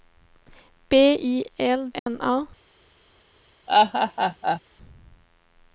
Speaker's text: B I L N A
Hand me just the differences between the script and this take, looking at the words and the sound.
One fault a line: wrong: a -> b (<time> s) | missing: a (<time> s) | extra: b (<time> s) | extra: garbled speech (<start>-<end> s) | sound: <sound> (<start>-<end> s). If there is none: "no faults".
sound: dropout (2.0-2.1 s)
sound: laugh (3.7-4.6 s)